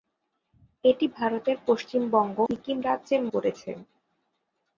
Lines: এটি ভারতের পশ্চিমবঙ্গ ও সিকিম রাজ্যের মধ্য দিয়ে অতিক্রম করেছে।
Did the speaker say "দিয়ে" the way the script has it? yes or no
no